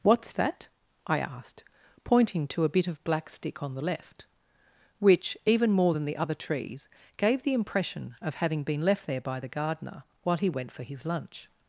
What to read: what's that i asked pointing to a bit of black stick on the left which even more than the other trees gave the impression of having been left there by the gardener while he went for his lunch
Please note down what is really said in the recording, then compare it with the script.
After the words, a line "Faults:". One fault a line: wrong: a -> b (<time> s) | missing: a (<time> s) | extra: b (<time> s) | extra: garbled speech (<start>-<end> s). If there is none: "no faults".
what's that i asked pointing to a bit of black stick on the left which even more than the other trees gave the impression of having been left there by the gardener while he went for his lunch
Faults:
no faults